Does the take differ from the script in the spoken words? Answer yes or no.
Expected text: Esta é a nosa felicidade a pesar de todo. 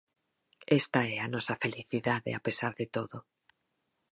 no